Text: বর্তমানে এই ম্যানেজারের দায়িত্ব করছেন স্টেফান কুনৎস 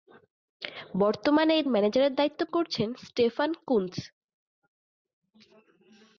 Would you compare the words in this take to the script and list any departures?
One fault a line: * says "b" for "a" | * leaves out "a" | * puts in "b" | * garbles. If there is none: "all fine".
all fine